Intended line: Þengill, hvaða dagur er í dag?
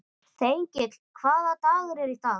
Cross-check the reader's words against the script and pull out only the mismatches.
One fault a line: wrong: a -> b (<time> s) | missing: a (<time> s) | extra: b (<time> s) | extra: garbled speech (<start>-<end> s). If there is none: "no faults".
no faults